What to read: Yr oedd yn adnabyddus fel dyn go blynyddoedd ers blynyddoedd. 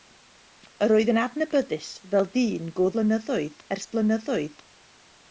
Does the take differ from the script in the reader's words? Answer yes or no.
no